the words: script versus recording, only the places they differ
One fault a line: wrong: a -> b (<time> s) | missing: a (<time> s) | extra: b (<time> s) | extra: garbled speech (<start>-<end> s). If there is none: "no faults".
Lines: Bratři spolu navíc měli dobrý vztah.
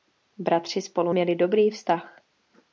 missing: navíc (1.1 s)